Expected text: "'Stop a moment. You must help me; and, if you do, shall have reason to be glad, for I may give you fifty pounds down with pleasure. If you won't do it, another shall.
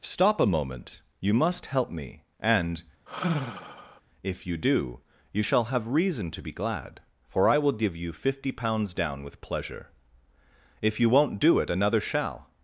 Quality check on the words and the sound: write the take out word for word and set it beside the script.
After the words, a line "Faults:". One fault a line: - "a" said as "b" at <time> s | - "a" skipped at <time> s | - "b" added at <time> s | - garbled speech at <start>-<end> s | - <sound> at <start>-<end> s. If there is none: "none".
"'Stop a moment. You must help me; and, if you do, you shall have reason to be glad, for I will give you fifty pounds down with pleasure. If you won't do it, another shall.
Faults:
- sigh at 3.1-4.0 s
- "you" added at 5.3 s
- "may" said as "will" at 7.6 s